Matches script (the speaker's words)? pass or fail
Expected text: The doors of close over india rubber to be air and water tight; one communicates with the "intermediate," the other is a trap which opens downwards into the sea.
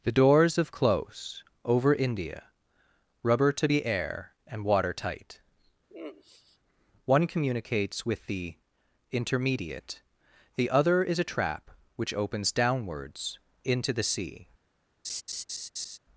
pass